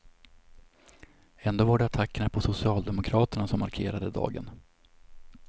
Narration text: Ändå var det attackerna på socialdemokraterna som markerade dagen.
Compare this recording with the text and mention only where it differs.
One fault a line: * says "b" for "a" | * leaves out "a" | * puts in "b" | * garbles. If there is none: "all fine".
all fine